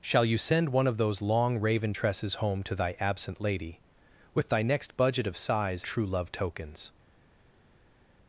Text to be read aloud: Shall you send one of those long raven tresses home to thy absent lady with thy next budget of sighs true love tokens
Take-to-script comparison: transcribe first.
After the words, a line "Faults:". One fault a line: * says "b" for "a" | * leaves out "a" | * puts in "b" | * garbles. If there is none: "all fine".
Shall you send one of those long raven tresses home to thy absent lady with thy next budget of sighs true love tokens
Faults:
all fine